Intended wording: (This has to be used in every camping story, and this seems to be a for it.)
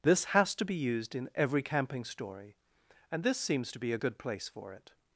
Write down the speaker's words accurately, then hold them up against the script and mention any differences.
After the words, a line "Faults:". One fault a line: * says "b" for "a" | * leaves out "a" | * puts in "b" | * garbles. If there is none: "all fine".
(This has to be used in every camping story, and this seems to be a good place for it.)
Faults:
* puts in "good place"